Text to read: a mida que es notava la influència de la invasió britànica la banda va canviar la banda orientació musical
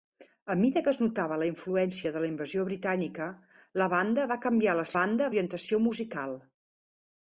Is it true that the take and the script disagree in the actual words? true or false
false